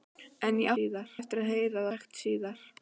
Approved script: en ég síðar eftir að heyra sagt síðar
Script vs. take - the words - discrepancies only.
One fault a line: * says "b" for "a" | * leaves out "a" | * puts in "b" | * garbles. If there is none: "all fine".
all fine